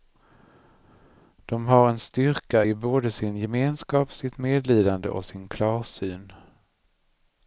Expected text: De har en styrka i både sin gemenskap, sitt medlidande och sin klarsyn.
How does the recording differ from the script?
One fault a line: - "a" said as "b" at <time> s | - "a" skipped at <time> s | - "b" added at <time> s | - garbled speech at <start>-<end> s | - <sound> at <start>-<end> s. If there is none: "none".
none